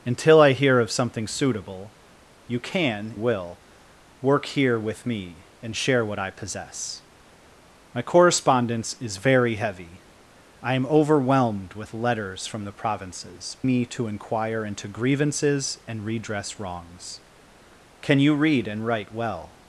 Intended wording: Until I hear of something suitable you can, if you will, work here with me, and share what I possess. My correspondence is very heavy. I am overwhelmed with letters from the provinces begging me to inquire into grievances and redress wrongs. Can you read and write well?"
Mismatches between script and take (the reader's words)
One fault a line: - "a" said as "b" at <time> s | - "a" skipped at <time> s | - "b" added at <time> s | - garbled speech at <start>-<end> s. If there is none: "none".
- "if you" skipped at 3.1 s
- "begging" skipped at 13.6 s